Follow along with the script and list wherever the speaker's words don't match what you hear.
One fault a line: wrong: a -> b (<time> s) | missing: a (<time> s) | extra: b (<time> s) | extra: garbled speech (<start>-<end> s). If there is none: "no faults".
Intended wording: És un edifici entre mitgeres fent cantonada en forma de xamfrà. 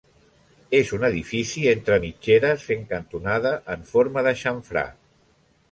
no faults